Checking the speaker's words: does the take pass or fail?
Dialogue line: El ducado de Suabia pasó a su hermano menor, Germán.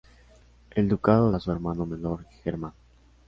fail